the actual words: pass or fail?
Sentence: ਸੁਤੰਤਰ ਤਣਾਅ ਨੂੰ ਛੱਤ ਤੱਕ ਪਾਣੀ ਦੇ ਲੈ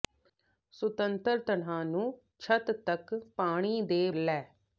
pass